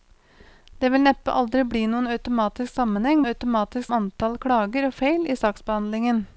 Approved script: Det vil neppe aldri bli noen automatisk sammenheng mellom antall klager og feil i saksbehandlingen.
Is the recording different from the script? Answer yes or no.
yes